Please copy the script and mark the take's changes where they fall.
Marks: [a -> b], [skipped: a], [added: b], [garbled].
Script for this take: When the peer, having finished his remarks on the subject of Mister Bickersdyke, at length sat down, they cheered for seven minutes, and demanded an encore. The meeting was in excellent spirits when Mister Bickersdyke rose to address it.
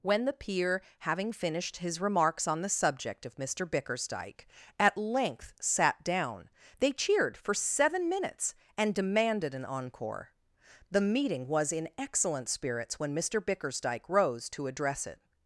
When the peer, having finished his remarks on the subject of Mister Bickersdyke, at length sat down, they cheered for seven minutes, and demanded an encore. The meeting was in excellent spirits when Mister Bickersdyke rose to address it.